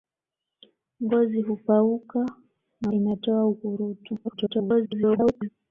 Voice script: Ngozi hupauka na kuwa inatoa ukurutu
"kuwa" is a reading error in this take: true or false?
true